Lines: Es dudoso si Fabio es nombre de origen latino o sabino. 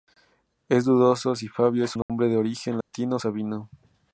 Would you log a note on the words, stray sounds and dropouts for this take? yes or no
yes